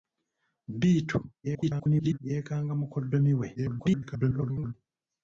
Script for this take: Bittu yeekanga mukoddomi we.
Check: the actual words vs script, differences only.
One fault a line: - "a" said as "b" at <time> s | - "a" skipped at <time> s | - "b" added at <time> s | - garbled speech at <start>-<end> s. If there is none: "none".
- garbled speech at 1.4-2.2 s
- garbled speech at 3.6-4.7 s